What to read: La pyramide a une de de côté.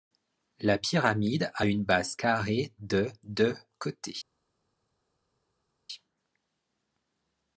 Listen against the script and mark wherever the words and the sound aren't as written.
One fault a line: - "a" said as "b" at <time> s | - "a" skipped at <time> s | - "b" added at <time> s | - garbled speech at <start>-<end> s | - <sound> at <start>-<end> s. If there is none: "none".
- "base carrée" added at 1.8 s